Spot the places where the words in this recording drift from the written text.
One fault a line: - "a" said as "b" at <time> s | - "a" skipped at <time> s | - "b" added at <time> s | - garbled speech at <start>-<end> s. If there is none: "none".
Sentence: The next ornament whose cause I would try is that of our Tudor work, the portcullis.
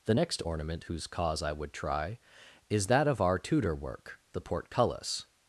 none